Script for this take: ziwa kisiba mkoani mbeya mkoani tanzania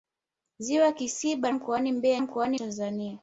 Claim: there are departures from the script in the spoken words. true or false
false